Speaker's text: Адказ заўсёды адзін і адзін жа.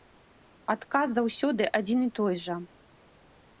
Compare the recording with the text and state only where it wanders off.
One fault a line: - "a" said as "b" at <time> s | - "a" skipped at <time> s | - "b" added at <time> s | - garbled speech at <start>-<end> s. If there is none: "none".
- "адзін" said as "той" at 2.2 s